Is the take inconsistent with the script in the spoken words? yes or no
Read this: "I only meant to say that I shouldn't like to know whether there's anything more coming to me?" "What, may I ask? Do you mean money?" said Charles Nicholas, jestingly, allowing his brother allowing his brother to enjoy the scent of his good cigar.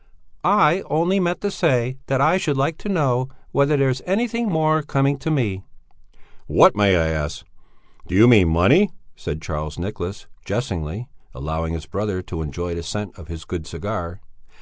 yes